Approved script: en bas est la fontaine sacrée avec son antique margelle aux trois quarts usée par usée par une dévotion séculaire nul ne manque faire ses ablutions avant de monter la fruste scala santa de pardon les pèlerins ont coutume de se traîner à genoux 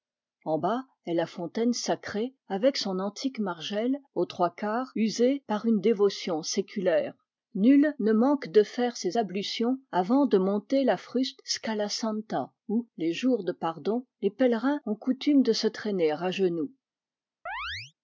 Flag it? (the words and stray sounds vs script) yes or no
yes